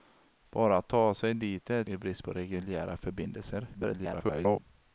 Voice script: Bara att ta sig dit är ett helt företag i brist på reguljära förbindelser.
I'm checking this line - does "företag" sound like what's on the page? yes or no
no